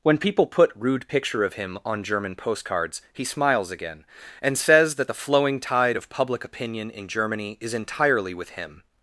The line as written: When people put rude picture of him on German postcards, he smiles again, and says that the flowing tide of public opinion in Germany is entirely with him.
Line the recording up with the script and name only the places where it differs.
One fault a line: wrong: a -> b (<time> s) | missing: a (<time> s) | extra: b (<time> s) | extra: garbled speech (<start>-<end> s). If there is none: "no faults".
no faults